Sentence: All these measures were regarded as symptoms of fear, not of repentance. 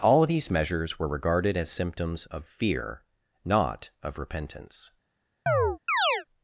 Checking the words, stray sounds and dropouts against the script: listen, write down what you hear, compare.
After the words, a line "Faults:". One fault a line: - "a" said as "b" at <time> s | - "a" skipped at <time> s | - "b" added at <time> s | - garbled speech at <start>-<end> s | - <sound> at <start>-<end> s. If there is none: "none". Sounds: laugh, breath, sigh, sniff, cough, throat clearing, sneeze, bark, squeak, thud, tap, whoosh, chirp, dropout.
All of these measures were regarded as symptoms of fear, not of repentance.
Faults:
- "of" added at 0.2 s
- chirp at 5.5-6.3 s